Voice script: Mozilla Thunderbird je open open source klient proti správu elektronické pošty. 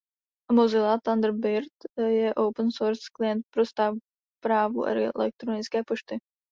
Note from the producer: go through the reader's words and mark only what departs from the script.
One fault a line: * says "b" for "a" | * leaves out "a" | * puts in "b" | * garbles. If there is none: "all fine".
* leaves out "open"
* says "pro" for "proti"